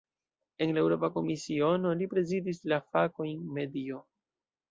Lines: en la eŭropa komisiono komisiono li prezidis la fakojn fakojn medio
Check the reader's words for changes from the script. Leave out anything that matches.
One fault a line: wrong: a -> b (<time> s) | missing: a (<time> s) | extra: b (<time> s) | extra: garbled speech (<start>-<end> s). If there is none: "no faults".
missing: komisiono (1.9 s)
missing: fakojn (3.5 s)